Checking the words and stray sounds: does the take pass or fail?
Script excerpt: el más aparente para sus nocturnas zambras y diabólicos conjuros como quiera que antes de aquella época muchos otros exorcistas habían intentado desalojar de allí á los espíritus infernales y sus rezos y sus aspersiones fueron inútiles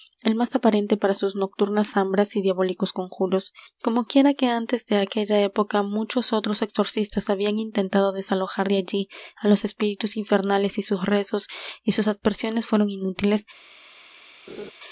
fail